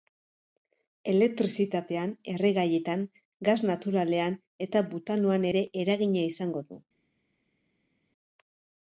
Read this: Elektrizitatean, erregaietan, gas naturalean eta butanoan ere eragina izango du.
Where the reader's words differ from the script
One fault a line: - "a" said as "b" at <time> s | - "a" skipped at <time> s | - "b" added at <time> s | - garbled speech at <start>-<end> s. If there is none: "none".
none